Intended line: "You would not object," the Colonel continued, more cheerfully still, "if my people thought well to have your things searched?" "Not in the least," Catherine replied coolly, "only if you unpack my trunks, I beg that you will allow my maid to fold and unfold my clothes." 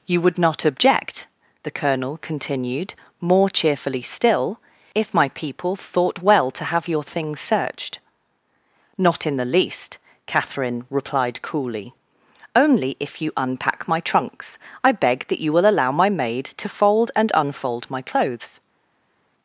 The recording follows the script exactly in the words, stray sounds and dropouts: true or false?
true